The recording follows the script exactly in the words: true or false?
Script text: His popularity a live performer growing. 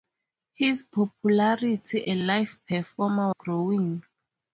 true